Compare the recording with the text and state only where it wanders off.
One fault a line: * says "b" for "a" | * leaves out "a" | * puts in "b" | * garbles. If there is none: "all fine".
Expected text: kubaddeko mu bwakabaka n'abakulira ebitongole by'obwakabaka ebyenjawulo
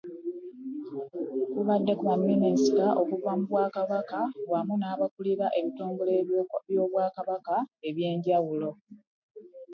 * puts in "baminisita okuva"
* puts in "wamu"